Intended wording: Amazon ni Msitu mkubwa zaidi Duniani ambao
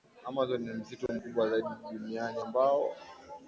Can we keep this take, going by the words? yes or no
yes